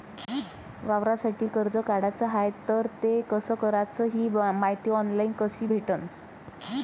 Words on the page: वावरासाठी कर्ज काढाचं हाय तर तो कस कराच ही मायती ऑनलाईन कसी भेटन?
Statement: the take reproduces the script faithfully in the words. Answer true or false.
false